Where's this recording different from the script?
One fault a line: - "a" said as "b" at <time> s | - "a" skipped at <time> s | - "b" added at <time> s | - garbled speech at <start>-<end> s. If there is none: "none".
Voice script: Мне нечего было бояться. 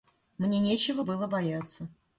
none